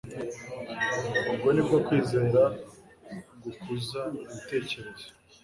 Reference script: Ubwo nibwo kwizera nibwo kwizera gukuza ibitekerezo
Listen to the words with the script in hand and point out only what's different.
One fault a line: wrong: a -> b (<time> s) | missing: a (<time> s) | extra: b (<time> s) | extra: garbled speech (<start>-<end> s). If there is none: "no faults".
missing: nibwo kwizera (2.4 s)